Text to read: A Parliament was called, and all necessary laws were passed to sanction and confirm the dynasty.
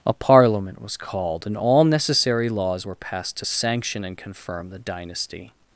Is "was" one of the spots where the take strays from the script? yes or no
no